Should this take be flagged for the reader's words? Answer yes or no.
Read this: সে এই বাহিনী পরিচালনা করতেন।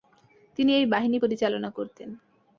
yes